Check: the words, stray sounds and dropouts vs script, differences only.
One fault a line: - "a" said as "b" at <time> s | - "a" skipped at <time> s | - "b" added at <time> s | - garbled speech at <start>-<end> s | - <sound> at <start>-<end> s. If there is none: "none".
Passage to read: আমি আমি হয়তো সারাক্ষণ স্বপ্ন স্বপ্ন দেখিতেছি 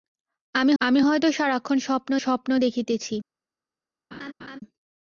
- laugh at 4.1-4.6 s